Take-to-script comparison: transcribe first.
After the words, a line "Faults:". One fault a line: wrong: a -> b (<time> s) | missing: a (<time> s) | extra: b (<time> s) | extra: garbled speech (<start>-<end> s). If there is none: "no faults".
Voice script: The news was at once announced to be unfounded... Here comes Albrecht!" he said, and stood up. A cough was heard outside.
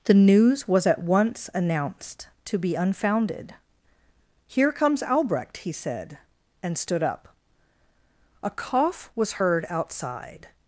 The news was at once announced to be unfounded... Here comes Albrecht!" he said, and stood up. A cough was heard outside.
Faults:
no faults